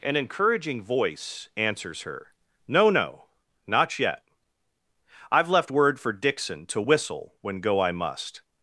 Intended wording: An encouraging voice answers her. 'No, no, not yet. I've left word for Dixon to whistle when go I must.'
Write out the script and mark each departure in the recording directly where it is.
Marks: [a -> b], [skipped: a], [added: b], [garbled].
An encouraging voice answers her. 'No, no, not yet. I've left word for Dixon to whistle when go I must.'